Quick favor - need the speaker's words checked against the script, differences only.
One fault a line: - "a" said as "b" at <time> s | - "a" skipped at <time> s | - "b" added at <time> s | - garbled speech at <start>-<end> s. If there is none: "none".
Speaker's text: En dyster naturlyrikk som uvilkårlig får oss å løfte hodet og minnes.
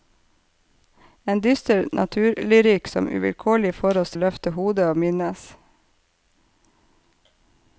none